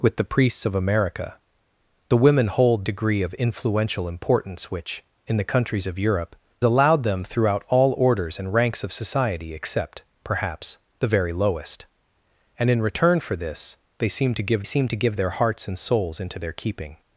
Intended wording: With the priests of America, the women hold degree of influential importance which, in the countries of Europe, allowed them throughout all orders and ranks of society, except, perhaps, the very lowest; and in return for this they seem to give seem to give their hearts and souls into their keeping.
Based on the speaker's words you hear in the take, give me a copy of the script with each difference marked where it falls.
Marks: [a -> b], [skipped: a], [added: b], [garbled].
With the priests of America, the women hold degree of influential importance which, in the countries of Europe, allowed them throughout all orders and ranks of society, except, perhaps, the very lowest; and in return for this they seem to give seem to give their hearts and souls into their keeping.